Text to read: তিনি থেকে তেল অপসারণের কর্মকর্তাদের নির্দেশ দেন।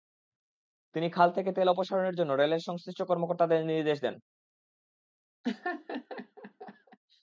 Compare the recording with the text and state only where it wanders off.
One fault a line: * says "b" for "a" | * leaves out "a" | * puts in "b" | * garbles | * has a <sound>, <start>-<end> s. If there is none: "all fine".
* puts in "খাল"
* puts in "জন্য রেলের সংশ্লিষ্ট"
* has a laugh, 5.4-7.0 s